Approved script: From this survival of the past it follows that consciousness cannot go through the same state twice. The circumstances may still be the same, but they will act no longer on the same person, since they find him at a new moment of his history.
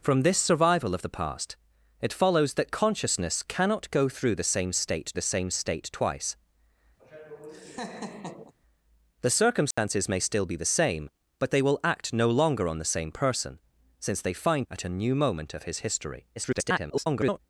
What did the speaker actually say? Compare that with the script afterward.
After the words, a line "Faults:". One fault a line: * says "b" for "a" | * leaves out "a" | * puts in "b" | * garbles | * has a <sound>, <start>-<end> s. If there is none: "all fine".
From this survival of the past it follows that consciousness cannot go through the same state the same state twice. The circumstances may still be the same, but they will act no longer on the same person, since they find at a new moment of his history. [garbled]
Faults:
* puts in "the same state"
* has a laugh, 7.0-8.5 s
* has a dropout, 9.7-9.8 s
* leaves out "him"
* garbles